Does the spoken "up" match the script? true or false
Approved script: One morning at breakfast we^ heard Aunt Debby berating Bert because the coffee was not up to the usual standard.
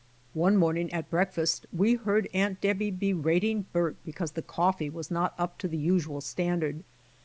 true